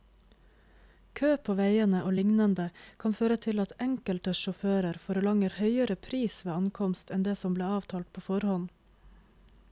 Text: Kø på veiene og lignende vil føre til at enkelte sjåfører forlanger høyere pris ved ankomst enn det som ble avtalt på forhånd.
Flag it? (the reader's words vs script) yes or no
yes